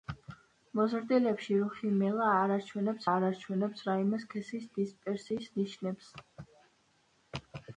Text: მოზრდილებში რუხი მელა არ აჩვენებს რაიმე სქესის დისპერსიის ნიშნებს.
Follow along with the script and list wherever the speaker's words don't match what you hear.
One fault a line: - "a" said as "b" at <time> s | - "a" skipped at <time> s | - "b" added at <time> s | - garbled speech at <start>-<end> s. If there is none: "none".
- "არ აჩვენებს" added at 3.1 s